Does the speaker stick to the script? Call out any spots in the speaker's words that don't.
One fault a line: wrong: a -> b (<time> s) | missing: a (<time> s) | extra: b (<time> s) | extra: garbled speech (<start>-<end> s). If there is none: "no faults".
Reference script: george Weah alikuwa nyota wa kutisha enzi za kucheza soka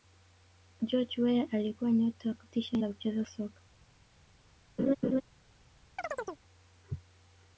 missing: enzi (2.8 s)